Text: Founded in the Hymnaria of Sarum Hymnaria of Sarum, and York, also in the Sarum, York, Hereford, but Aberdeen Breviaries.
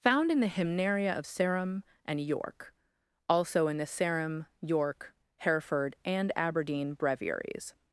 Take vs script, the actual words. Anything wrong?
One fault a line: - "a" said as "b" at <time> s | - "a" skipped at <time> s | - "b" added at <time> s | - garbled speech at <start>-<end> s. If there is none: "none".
- "Founded" said as "Found" at 0.0 s
- "Hymnaria of Sarum" skipped at 1.8 s
- "but" said as "and" at 6.0 s